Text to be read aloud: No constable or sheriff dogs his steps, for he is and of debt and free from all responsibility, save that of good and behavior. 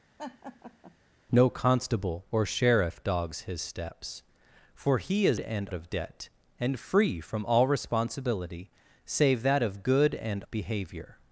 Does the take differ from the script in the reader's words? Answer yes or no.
no